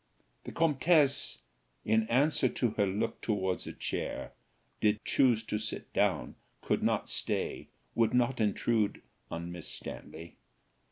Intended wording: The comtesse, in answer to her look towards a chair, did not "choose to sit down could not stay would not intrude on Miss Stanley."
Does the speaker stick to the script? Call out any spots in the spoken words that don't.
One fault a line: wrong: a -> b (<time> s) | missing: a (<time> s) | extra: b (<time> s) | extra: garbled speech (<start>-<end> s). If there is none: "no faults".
missing: not (5.0 s)